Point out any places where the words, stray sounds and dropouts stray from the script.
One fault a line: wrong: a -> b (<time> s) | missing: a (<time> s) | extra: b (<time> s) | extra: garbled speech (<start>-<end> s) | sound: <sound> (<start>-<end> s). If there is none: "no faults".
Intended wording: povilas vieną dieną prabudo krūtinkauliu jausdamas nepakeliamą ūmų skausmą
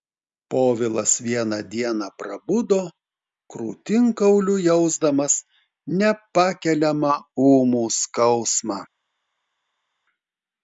no faults